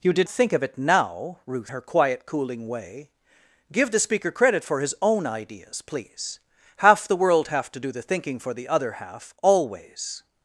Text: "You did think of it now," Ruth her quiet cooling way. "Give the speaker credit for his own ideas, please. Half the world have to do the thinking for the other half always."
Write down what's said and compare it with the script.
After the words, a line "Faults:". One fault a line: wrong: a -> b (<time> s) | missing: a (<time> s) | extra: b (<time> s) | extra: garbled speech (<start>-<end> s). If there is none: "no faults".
"You did think of it now," Ruth her quiet cooling way. "Give the speaker credit for his own ideas, please. Half the world have to do the thinking for the other half always."
Faults:
no faults